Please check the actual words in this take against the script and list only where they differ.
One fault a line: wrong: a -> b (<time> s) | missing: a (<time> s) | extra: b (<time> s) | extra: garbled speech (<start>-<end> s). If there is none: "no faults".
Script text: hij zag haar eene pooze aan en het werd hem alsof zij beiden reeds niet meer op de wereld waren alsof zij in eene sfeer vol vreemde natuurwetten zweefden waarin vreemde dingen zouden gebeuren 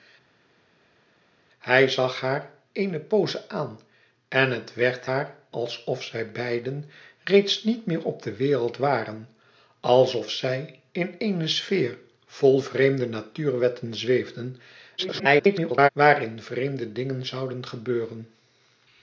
wrong: hem -> haar (5.0 s)
extra: garbled speech (15.0-15.9 s)